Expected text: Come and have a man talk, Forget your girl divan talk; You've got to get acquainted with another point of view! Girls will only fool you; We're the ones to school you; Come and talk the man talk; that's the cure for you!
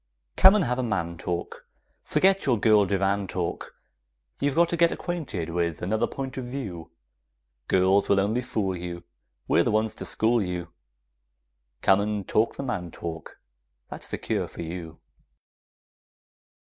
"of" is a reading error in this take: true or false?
false